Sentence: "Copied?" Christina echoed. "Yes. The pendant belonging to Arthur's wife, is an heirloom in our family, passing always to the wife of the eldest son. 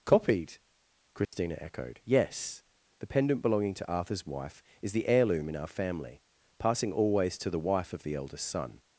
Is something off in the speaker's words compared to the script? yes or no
yes